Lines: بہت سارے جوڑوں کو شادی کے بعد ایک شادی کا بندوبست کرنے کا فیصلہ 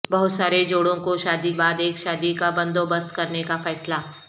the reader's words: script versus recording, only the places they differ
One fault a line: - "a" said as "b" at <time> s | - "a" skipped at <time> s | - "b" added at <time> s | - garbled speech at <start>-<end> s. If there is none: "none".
- "کے" skipped at 1.5 s